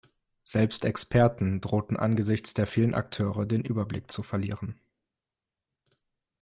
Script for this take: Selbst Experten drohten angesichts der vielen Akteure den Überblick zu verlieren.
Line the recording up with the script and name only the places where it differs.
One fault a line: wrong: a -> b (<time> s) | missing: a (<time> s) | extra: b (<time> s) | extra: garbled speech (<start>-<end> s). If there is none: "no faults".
no faults